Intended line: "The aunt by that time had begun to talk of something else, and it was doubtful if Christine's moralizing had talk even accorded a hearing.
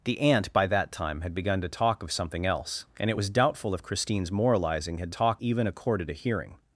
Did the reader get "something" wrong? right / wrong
right